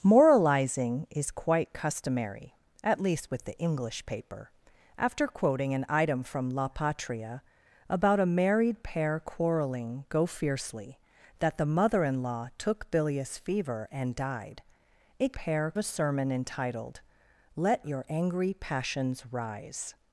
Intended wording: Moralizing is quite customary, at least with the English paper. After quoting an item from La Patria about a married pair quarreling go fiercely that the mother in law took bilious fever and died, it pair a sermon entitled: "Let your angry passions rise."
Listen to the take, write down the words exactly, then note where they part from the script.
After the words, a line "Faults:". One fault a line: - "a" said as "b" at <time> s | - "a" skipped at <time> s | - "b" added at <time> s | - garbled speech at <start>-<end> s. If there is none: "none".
Moralizing is quite customary, at least with the English paper. After quoting an item from La Patria about a married pair quarreling go fiercely that the mother in law took bilious fever and died, it pair a sermon entitled: "Let your angry passions rise."
Faults:
none